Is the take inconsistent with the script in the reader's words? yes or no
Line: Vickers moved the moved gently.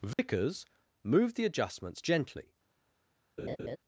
yes